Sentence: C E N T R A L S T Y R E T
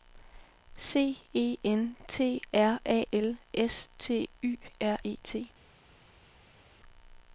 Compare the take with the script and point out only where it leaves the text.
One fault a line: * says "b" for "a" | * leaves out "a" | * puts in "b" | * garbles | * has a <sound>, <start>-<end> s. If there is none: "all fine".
all fine